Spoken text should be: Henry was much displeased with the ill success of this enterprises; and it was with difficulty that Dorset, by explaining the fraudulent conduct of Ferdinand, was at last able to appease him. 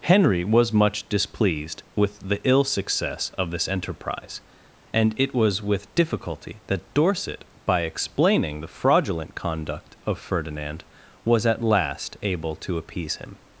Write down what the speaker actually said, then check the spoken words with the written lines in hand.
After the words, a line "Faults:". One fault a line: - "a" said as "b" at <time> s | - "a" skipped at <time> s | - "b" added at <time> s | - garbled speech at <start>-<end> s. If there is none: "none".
Henry was much displeased with the ill success of this enterprise; and it was with difficulty that Dorset, by explaining the fraudulent conduct of Ferdinand, was at last able to appease him.
Faults:
- "enterprises" said as "enterprise" at 3.7 s